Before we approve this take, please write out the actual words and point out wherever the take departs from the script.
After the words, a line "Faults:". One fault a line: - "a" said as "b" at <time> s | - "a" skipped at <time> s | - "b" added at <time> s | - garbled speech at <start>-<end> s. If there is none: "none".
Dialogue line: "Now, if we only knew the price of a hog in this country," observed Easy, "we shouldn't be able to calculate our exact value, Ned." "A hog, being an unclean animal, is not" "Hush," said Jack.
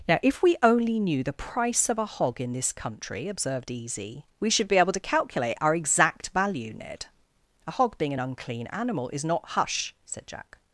"Now, if we only knew the price of a hog in this country," observed Easy, "we should be able to calculate our exact value, Ned." "A hog, being an unclean animal, is not" "Hush," said Jack.
Faults:
- "shouldn't" said as "should" at 4.5 s